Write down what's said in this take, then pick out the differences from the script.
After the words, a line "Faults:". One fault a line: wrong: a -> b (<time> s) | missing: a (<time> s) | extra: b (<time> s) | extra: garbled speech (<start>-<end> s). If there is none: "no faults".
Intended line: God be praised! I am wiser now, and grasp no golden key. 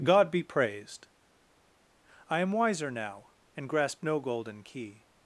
God be praised! I am wiser now, and grasp no golden key.
Faults:
no faults